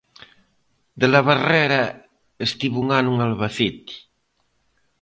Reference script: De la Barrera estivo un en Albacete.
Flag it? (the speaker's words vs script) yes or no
yes